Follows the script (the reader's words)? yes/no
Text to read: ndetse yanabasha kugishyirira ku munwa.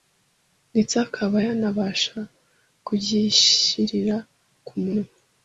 no